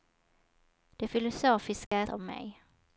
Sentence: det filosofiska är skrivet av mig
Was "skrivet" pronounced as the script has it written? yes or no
no